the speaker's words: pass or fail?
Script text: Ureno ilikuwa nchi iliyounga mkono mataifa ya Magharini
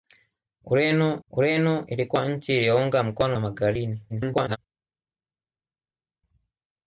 fail